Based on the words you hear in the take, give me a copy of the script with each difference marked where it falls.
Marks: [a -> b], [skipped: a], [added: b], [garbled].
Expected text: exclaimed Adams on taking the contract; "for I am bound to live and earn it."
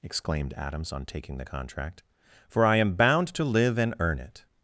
exclaimed Adams on taking the contract; "for I am bound to live and earn it."